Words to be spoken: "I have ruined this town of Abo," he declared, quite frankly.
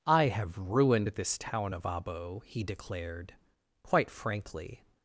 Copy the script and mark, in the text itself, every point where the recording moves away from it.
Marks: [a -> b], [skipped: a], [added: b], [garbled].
"I have ruined this town of Abo," he declared, quite frankly.